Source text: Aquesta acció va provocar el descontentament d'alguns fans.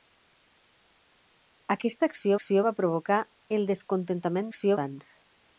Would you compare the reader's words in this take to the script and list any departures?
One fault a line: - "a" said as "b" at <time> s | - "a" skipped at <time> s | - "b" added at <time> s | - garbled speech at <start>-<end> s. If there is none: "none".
- "acció" added at 2.4 s
- "d'alguns" said as "acció" at 4.5 s